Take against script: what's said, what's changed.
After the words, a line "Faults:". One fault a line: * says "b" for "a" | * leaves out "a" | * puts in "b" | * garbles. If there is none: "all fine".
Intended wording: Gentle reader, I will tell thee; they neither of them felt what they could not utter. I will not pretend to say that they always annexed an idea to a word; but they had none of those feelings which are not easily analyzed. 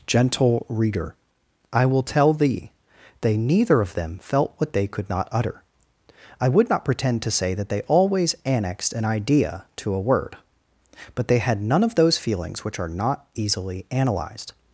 Gentle reader, I will tell thee; they neither of them felt what they could not utter. I would not pretend to say that they always annexed an idea to a word; but they had none of those feelings which are not easily analyzed.
Faults:
* says "would" for "will"